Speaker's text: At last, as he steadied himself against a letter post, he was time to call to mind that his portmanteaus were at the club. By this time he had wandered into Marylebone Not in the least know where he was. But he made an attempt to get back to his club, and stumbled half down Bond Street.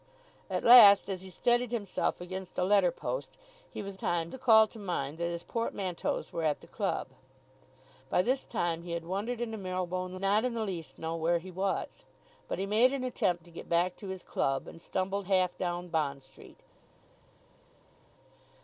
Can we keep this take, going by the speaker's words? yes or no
yes